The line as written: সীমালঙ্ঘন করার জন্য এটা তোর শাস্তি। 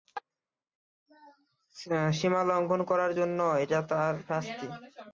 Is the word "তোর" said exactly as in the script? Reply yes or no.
no